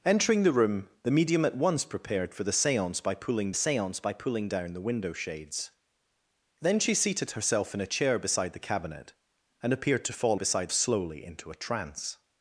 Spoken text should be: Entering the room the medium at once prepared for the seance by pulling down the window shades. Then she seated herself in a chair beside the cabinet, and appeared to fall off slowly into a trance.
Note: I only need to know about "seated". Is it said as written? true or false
true